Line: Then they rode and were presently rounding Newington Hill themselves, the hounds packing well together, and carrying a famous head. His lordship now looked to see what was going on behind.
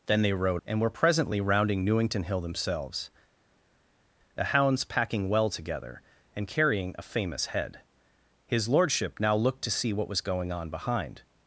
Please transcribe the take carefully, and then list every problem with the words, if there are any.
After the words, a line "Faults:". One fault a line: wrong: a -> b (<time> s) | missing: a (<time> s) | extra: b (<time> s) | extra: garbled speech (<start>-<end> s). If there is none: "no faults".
Then they rode and were presently rounding Newington Hill themselves, the hounds packing well together, and carrying a famous head. His lordship now looked to see what was going on behind.
Faults:
no faults